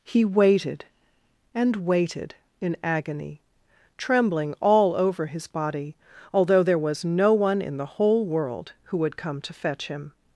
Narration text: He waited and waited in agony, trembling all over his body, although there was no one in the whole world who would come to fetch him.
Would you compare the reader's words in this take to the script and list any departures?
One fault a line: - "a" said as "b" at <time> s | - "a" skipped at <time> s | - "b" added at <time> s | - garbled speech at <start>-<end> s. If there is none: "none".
none